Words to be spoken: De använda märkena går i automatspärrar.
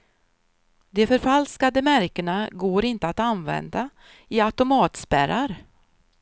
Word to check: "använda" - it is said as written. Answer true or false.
false